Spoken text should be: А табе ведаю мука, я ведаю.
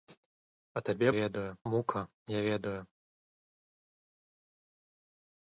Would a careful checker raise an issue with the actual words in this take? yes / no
no